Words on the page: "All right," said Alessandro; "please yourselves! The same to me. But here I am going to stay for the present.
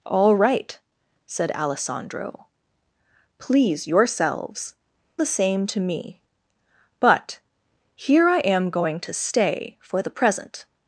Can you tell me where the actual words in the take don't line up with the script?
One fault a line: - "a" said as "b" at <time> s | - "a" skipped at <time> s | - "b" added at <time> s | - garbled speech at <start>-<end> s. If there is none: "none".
none